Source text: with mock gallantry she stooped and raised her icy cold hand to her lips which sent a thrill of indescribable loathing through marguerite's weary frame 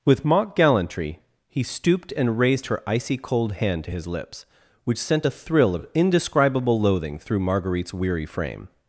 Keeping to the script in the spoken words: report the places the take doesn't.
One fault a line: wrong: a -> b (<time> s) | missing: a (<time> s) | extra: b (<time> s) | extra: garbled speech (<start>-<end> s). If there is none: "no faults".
wrong: she -> he (1.5 s)
wrong: her -> his (3.9 s)